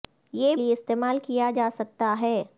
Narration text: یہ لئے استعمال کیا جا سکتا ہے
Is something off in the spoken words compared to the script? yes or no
no